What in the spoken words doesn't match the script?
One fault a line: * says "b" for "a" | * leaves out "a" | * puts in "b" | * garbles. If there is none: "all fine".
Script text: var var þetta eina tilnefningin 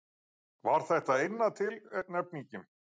* leaves out "var"